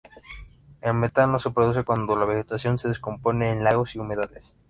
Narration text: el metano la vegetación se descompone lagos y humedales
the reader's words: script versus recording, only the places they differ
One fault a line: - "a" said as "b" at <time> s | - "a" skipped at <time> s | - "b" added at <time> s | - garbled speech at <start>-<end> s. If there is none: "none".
- "se produce cuando" added at 1.4 s
- "en" added at 3.5 s